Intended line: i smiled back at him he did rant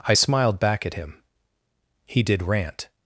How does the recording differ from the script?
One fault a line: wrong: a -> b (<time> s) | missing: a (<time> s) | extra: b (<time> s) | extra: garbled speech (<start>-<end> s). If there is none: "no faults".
no faults